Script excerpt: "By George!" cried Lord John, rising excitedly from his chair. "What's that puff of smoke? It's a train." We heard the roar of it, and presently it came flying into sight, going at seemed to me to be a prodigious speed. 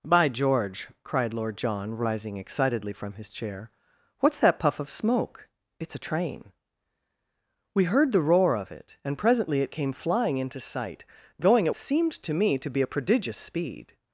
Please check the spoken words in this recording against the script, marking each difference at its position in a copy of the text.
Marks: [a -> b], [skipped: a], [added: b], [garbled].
"By George!" cried Lord John, rising excitedly from his chair. "What's that puff of smoke? It's a train." We heard the roar of it, and presently it came flying into sight, going at seemed to me to be a prodigious speed.